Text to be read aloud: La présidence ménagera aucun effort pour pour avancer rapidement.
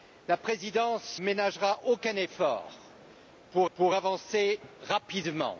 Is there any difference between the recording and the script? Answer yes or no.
no